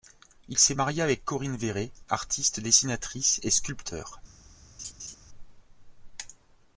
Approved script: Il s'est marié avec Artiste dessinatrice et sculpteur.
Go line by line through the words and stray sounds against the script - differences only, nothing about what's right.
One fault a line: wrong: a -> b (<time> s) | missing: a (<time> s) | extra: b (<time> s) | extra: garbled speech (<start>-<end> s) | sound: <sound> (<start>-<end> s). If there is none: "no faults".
extra: Corinne Véret (1.3 s)
sound: laugh (4.8-5.2 s)